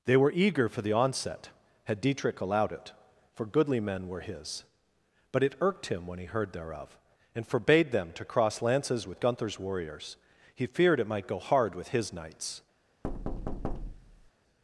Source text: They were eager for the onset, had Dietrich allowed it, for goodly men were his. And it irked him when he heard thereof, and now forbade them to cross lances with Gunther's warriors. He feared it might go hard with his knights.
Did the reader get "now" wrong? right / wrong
wrong